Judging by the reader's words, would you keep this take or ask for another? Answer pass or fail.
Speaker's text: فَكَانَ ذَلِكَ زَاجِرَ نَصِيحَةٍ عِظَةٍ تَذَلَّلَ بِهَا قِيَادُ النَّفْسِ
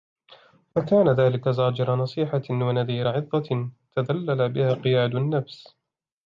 fail